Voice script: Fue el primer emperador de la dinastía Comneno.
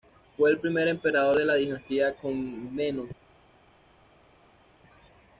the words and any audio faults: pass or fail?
pass